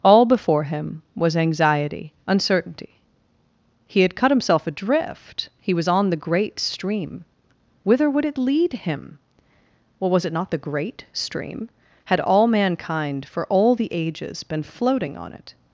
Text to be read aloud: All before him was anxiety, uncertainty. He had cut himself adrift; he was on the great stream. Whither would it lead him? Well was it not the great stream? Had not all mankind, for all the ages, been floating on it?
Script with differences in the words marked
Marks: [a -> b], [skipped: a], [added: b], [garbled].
All before him was anxiety, uncertainty. He had cut himself adrift; he was on the great stream. Whither would it lead him? Well was it not the great stream? Had [skipped: not] all mankind, for all the ages, been floating on it?